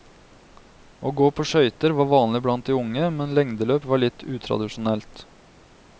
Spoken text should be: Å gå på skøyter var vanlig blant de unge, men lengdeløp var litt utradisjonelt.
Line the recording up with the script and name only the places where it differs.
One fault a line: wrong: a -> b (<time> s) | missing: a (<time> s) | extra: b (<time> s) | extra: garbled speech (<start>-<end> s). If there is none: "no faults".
no faults